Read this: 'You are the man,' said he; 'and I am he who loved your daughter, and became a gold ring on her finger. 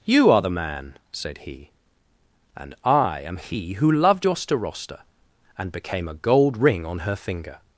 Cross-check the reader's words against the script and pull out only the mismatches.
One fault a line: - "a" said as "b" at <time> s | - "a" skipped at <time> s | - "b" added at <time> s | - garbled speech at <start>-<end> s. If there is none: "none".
- "daughter" said as "starosta" at 4.4 s